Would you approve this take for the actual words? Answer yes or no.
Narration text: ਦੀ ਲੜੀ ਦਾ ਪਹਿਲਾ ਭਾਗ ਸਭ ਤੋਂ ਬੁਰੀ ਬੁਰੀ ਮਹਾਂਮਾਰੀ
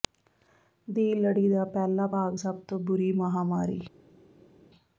no